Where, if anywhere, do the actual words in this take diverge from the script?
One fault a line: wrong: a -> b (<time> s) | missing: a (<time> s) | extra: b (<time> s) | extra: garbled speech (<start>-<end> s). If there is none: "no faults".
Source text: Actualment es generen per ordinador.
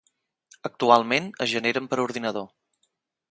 no faults